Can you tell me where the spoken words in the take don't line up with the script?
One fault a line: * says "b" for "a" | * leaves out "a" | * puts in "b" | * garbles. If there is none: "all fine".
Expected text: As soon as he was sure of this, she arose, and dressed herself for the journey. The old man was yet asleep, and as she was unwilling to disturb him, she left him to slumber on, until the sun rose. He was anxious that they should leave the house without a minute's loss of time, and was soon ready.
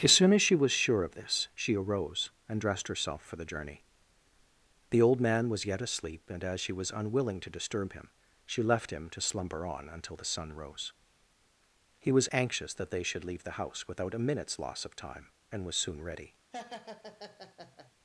* says "she" for "he"